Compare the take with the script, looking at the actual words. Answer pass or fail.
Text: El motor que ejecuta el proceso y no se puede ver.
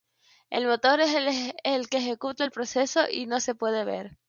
fail